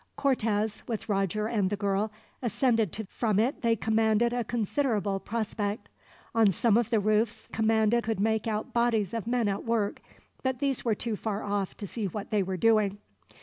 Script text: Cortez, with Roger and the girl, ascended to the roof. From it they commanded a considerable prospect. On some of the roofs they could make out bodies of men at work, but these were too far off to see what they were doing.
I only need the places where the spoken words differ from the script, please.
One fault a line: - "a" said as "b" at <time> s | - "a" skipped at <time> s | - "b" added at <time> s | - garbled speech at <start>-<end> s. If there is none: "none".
- "the roof" skipped at 3.0 s
- "they" said as "commanded" at 7.5 s